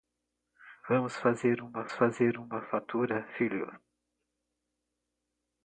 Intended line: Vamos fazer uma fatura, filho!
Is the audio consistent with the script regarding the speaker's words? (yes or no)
no